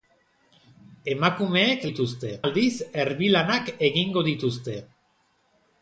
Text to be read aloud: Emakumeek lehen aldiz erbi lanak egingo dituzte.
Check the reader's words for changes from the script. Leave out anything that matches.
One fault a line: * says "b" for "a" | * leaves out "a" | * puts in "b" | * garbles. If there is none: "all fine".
* says "dituzte" for "lehen"